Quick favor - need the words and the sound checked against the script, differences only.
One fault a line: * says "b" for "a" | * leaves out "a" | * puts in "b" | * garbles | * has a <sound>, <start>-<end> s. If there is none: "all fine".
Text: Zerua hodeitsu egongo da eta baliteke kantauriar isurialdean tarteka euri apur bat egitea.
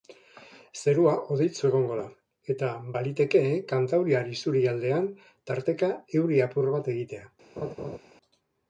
* has a laugh, 7.6-8.0 s